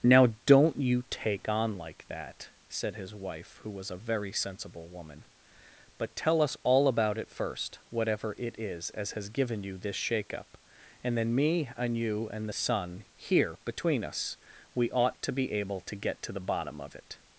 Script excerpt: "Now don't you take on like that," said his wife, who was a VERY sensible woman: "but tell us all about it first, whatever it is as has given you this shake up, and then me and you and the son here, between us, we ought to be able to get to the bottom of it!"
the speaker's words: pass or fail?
pass